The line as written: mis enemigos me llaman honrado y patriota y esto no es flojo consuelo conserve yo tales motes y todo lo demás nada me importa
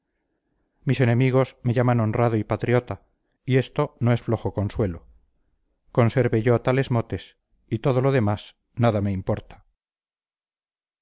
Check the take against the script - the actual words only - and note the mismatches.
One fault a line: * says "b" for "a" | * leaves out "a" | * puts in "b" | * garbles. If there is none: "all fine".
all fine